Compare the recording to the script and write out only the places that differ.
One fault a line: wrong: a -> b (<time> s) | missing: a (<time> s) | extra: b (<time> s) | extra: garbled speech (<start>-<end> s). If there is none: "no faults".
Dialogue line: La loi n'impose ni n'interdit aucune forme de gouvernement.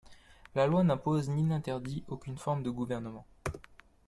no faults